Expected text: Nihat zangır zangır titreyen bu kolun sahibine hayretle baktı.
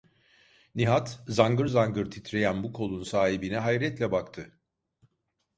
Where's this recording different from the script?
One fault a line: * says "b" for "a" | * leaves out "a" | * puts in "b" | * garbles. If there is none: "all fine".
all fine